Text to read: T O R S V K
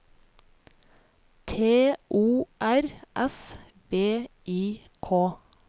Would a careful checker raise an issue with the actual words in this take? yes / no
yes